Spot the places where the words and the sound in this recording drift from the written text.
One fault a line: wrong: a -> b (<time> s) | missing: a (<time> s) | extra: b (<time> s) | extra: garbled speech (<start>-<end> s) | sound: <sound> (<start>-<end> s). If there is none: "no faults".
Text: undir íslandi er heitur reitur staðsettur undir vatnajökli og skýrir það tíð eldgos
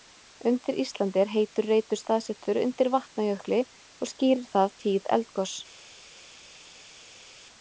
no faults